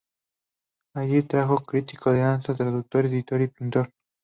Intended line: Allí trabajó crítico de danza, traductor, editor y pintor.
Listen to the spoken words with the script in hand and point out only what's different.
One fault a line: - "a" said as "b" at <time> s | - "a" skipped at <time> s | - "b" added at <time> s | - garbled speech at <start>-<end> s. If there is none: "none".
none